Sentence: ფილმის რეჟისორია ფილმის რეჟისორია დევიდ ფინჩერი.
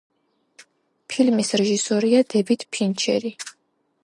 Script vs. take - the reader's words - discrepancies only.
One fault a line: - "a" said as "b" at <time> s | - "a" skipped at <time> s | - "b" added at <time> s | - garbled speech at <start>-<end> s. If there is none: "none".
- "ფილმის რეჟისორია" skipped at 2.2 s